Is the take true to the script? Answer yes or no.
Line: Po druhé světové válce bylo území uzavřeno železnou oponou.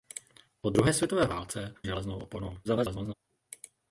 no